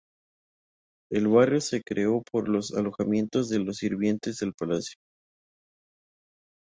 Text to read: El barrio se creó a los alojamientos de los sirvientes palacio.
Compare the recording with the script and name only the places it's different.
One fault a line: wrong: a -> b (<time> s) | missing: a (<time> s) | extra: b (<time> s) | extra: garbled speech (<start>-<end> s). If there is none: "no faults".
wrong: a -> por (2.3 s)
extra: del (4.4 s)